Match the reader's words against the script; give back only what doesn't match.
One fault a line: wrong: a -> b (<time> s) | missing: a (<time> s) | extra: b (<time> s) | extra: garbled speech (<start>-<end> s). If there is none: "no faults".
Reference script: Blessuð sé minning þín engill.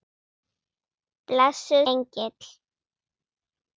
missing: sé minning þín (1.9 s)